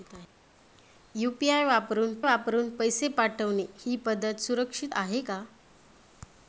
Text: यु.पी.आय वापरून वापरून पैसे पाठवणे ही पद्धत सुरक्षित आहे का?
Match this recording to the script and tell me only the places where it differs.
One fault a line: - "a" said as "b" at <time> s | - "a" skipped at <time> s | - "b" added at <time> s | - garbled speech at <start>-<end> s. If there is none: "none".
none